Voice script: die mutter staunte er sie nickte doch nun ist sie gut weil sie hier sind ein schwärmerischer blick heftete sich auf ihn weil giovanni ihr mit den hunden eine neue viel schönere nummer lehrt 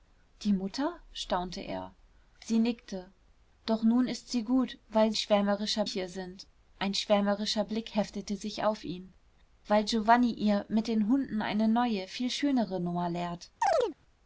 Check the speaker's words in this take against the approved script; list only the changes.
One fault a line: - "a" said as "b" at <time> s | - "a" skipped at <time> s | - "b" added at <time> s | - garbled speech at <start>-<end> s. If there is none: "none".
- "sie" said as "schwärmerischer" at 5.2 s